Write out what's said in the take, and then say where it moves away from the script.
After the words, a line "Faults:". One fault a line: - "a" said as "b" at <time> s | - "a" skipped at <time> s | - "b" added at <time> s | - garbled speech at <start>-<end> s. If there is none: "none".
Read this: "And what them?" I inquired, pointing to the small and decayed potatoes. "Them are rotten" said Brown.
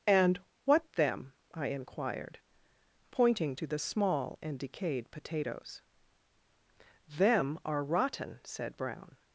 "And what them?" I inquired, pointing to the small and decayed potatoes. "Them are rotten" said Brown.
Faults:
none